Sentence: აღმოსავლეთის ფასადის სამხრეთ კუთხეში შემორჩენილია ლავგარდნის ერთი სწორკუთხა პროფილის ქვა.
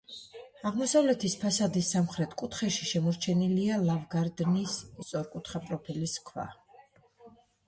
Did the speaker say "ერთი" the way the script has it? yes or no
no